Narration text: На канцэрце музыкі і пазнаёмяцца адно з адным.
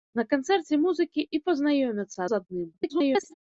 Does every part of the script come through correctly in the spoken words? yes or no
no